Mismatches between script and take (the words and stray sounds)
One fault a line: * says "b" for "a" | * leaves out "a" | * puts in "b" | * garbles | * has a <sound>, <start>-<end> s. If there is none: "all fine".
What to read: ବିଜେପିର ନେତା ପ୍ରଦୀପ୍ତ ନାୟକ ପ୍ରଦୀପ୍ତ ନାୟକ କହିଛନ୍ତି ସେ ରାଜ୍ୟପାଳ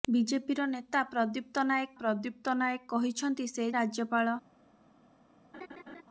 * has a laugh, 5.5-6.0 s